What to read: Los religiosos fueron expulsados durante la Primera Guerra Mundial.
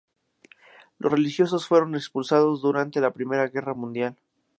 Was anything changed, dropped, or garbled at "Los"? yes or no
no